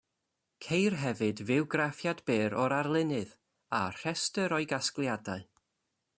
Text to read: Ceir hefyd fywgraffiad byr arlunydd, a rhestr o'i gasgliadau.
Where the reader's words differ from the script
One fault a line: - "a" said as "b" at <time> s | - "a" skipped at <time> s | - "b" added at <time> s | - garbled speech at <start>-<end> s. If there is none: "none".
- "o'r" added at 2.6 s